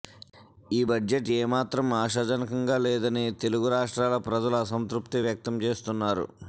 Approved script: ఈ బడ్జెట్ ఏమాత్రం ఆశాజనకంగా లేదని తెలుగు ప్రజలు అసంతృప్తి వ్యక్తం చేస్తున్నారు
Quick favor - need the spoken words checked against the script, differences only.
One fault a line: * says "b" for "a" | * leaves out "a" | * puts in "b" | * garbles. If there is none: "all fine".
* puts in "రాష్ట్రాల"